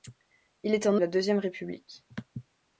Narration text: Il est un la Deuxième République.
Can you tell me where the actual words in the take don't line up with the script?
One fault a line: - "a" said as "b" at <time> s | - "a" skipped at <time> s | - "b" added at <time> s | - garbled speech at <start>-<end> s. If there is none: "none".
none